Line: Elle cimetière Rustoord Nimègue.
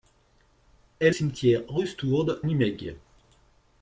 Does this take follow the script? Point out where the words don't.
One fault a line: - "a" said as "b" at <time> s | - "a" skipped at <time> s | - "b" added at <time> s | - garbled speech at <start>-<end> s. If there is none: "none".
none